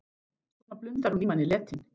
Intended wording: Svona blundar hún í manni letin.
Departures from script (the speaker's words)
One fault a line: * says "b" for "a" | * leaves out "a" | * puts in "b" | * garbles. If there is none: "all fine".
all fine